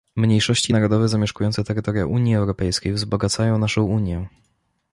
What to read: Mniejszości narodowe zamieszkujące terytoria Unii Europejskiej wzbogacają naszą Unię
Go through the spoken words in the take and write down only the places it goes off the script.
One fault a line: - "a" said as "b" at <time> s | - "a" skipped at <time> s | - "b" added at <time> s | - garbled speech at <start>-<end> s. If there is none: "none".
none